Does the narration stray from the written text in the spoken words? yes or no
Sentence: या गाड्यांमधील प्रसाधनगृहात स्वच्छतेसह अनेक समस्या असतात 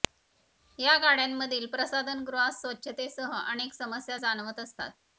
yes